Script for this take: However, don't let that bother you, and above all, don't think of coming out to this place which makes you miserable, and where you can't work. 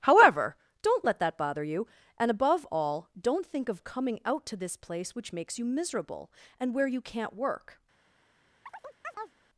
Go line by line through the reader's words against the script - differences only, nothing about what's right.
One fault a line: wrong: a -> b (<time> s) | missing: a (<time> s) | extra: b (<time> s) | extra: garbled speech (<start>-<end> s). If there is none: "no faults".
no faults